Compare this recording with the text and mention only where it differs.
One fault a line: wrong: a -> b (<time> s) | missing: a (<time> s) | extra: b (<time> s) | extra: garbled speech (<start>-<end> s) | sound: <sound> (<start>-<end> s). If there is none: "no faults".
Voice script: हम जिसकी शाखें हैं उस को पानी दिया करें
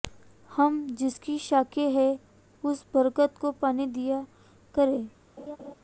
extra: बरगद (2.9 s)
sound: laugh (5.4-5.7 s)